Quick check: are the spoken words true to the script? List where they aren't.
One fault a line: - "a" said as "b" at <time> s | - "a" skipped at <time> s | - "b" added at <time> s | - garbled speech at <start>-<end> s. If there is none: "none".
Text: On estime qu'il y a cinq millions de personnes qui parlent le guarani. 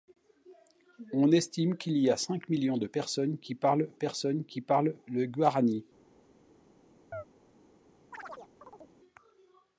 - "personnes qui parlent" added at 3.9 s